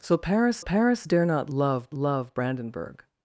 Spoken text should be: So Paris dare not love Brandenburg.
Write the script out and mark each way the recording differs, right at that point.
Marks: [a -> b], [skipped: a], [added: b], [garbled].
So Paris [added: Paris] dare not love [added: love] Brandenburg.